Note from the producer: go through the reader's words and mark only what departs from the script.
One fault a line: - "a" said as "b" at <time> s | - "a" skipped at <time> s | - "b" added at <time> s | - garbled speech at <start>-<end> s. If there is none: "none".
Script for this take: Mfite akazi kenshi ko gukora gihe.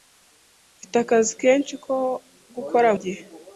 none